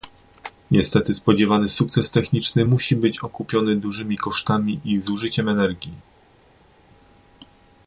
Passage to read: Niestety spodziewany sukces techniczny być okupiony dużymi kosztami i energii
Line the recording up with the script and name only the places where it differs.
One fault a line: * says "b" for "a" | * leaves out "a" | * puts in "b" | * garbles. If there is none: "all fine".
* puts in "musi"
* puts in "zużyciem"